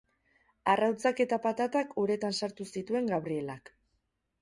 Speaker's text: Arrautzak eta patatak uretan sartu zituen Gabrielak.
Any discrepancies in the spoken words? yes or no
no